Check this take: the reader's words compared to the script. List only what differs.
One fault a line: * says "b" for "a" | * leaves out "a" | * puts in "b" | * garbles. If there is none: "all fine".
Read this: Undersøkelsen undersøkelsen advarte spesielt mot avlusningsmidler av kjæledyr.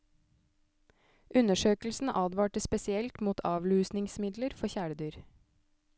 * leaves out "undersøkelsen"
* says "for" for "av"